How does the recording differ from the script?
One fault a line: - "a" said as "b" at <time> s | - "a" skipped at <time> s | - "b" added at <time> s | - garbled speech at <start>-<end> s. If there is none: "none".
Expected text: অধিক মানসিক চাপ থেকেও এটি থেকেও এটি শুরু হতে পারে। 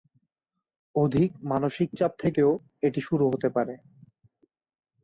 - "থেকেও এটি" skipped at 3.0 s